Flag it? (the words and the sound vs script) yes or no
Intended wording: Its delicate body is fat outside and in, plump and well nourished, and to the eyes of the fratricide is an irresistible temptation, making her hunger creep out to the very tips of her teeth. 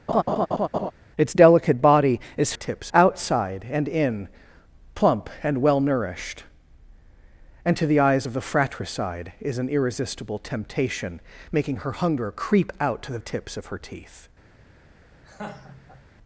yes